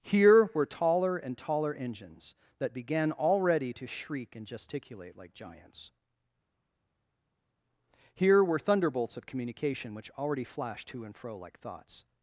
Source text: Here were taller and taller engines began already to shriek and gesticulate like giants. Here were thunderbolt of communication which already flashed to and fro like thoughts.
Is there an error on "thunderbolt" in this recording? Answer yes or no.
yes